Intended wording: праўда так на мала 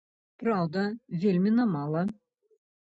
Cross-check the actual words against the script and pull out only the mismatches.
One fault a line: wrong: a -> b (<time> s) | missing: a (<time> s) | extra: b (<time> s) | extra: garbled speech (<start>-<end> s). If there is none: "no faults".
wrong: так -> вельмі (1.3 s)